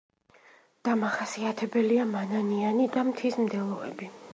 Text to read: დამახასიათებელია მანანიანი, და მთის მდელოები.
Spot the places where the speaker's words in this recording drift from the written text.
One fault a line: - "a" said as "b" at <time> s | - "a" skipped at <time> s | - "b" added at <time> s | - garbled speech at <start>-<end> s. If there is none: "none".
none